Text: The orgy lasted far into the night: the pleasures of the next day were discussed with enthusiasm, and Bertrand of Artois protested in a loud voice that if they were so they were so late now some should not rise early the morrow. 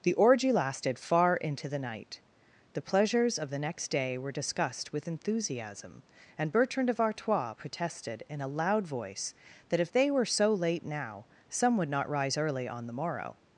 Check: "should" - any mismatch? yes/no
yes